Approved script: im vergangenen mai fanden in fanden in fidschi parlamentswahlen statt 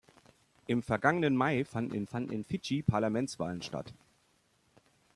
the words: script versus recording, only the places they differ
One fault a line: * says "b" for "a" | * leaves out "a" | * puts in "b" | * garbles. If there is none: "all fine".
all fine